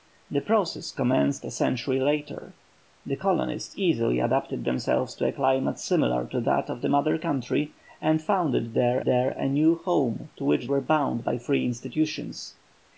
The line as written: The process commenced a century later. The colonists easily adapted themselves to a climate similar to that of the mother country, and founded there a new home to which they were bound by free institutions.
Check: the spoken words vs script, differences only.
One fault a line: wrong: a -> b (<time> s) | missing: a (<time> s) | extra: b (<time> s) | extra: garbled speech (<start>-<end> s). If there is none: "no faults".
extra: there (9.0 s)
missing: they (10.7 s)